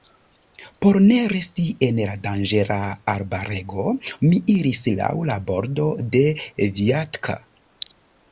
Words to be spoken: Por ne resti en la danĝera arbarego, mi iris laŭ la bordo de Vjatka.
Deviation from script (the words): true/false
false